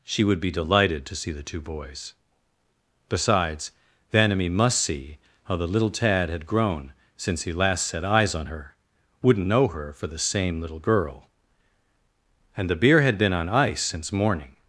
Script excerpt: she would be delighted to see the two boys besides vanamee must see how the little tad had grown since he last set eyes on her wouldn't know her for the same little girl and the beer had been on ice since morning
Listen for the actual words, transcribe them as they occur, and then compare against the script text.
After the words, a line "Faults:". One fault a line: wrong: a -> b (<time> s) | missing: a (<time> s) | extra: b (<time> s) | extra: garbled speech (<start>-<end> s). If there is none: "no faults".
she would be delighted to see the two boys besides vanamee must see how the little tad had grown since he last set eyes on her wouldn't know her for the same little girl and the beer had been on ice since morning
Faults:
no faults